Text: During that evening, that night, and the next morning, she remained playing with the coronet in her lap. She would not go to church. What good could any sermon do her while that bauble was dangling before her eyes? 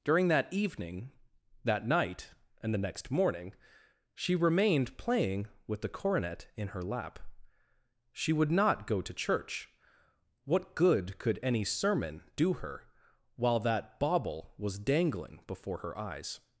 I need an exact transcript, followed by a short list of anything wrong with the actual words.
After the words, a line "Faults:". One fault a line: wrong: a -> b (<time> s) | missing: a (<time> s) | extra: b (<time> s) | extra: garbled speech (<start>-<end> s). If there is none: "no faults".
During that evening, that night, and the next morning, she remained playing with the coronet in her lap. She would not go to church. What good could any sermon do her while that bauble was dangling before her eyes?
Faults:
no faults